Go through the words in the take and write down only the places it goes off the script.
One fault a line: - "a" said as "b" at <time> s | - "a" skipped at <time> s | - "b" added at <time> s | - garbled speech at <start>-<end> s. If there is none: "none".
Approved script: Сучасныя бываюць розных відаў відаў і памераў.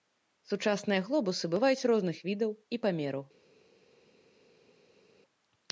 - "глобусы" added at 1.1 s
- "відаў" skipped at 2.5 s